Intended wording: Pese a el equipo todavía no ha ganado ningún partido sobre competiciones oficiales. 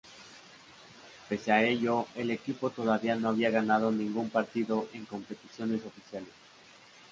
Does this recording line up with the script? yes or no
no